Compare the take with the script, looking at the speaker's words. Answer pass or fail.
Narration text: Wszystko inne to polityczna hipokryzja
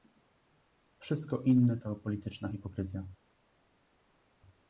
pass